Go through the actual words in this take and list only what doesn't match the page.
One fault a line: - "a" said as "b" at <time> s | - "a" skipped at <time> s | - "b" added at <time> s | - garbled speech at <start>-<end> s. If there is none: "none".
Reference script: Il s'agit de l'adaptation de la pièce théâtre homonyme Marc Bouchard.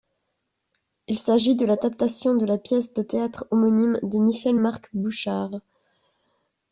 - "de" added at 2.9 s
- "de Michel" added at 4.0 s